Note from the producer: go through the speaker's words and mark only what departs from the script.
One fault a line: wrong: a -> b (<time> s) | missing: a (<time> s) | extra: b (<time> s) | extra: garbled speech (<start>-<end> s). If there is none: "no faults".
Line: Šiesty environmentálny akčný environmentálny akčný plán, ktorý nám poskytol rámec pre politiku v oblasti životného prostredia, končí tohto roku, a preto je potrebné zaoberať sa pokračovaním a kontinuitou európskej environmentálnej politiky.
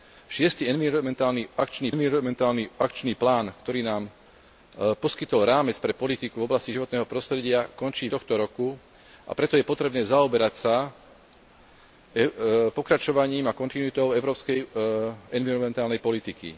no faults